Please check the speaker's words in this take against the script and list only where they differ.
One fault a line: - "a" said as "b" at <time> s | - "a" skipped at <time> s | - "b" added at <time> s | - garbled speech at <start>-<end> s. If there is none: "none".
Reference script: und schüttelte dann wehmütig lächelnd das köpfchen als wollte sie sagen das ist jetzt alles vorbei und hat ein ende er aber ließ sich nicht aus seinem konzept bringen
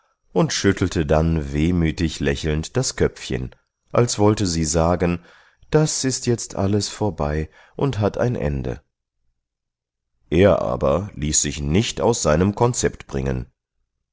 none